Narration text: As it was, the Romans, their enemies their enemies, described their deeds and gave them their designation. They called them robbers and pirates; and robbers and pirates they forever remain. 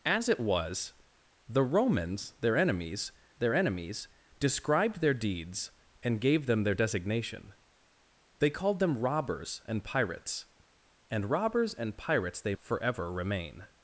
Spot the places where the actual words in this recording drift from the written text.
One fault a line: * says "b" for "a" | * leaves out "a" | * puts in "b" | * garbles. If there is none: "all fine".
all fine